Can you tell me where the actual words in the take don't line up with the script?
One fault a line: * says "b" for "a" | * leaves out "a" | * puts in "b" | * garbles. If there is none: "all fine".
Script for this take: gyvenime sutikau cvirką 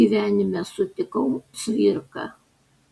all fine